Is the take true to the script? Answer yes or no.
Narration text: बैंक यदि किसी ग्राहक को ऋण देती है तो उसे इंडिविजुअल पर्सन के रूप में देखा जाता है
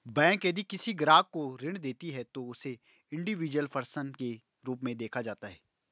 yes